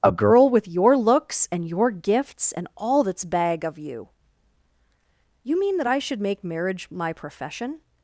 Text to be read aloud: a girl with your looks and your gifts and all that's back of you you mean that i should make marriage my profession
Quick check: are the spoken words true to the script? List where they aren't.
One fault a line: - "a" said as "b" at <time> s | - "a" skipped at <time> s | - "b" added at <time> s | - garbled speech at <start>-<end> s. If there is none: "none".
- "back" said as "bag" at 3.2 s